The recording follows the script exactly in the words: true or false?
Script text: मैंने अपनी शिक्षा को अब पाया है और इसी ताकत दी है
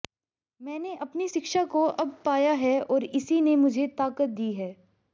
false